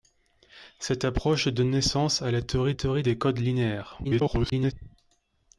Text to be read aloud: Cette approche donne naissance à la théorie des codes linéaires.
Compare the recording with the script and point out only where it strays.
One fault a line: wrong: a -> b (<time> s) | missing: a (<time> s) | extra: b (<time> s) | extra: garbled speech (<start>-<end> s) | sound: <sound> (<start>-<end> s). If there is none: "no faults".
extra: théorie (2.7 s)
extra: garbled speech (4.0-4.7 s)